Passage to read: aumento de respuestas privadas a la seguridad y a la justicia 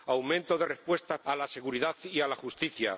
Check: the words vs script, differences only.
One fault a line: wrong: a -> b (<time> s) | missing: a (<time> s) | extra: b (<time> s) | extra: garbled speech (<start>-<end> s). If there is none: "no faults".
missing: privadas (1.2 s)